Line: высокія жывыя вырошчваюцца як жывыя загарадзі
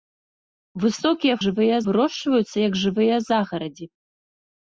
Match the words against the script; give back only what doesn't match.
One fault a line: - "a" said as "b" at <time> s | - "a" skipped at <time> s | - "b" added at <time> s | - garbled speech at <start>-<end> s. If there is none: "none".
none